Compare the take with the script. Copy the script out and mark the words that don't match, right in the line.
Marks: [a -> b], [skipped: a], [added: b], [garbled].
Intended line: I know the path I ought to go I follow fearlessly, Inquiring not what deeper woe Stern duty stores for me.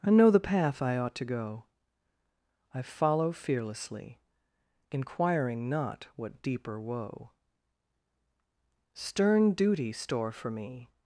I know the path I ought to go I follow fearlessly, Inquiring not what deeper woe Stern duty [stores -> store] for me.